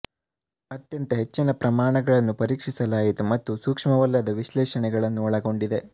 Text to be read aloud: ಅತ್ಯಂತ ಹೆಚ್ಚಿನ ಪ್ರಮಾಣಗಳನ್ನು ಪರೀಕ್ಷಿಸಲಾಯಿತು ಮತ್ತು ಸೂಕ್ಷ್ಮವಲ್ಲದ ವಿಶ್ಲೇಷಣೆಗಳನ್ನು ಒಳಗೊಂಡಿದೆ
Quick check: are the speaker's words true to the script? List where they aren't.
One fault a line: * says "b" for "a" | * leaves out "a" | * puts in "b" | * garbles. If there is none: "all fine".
all fine